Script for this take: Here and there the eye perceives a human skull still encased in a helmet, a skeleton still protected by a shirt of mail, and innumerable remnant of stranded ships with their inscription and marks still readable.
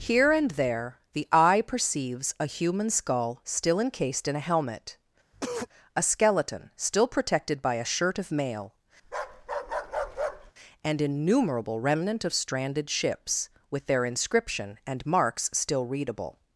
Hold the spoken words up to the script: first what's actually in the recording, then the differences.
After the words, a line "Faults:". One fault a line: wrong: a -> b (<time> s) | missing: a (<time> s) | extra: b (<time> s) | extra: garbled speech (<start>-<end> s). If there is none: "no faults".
Here and there the eye perceives a human skull still encased in a helmet, a skeleton still protected by a shirt of mail, and innumerable remnant of stranded ships with their inscription and marks still readable.
Faults:
no faults